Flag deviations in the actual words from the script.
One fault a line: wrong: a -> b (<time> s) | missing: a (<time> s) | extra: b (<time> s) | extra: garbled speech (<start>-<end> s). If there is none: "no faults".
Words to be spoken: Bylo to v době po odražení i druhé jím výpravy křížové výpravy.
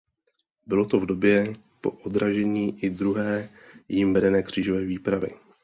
wrong: výpravy -> vedené (4.1 s)